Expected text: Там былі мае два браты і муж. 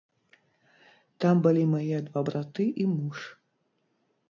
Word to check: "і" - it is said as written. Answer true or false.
true